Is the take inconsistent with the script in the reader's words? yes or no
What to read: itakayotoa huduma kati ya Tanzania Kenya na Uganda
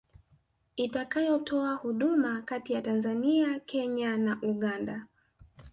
no